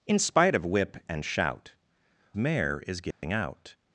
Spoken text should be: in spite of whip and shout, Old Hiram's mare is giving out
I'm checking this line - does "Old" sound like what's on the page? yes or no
no